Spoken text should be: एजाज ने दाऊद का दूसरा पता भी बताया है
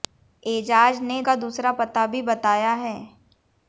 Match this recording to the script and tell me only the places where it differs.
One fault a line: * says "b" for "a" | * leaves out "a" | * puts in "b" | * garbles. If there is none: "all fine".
* leaves out "दाऊद"